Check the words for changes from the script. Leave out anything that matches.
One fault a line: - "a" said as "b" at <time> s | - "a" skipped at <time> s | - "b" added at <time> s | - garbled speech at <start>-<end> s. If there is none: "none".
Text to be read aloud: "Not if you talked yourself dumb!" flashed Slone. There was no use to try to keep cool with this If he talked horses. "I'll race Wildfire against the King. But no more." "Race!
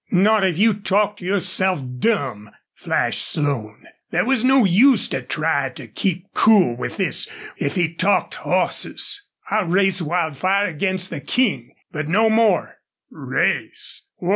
none